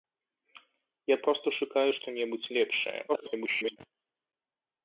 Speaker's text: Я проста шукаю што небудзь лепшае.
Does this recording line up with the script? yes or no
no